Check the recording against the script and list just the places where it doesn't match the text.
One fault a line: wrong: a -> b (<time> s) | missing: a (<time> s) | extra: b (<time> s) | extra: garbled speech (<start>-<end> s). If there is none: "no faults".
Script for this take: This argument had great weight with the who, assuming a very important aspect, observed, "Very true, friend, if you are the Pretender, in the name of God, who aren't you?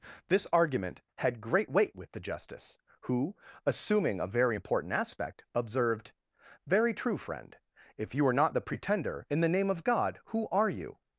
extra: justice (2.2 s)
extra: not (8.4 s)
wrong: aren't -> are (10.5 s)